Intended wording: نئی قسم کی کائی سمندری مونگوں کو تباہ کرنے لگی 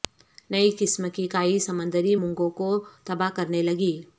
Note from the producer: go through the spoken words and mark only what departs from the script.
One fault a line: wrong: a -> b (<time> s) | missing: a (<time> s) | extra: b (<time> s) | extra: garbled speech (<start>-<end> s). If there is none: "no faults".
no faults